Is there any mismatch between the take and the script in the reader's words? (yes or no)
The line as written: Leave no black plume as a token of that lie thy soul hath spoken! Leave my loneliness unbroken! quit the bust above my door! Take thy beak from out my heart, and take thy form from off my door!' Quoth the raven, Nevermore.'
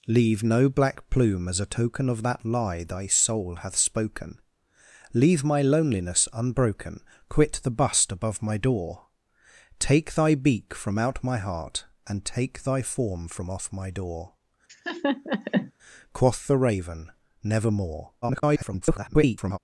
yes